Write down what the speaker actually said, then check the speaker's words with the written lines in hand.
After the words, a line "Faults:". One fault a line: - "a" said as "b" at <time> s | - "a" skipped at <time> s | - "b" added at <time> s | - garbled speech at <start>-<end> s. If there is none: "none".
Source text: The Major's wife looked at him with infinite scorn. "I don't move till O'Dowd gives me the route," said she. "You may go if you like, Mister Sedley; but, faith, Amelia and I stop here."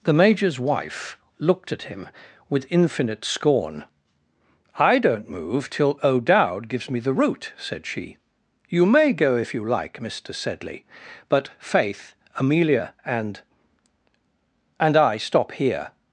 The Major's wife looked at him with infinite scorn. "I don't move till O'Dowd gives me the route," said she. "You may go if you like, Mister Sedley; but, faith, Amelia and and I stop here."
Faults:
- "and" added at 14.8 s